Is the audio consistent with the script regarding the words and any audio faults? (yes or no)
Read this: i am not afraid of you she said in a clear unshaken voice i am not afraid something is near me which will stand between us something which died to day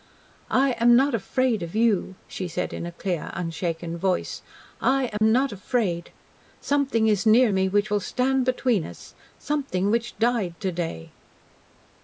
no